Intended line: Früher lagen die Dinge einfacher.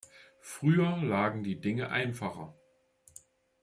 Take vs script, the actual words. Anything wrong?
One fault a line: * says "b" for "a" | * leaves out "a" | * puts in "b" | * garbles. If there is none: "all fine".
all fine